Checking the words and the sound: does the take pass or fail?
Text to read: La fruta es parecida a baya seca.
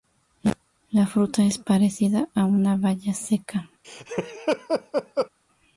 fail